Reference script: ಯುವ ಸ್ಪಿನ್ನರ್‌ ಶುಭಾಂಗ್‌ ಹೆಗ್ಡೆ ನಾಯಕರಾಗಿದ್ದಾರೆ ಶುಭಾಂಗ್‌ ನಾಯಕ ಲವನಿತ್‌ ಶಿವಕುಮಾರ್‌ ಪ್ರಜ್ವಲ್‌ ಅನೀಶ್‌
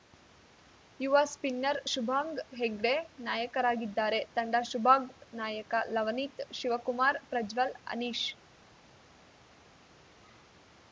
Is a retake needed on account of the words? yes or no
yes